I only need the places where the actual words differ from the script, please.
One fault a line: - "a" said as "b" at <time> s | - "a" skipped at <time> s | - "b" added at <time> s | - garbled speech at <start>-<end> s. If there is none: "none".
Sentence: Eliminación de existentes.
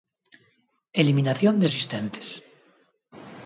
none